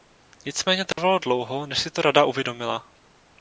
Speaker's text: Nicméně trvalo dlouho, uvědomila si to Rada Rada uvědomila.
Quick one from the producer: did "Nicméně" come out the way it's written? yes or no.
yes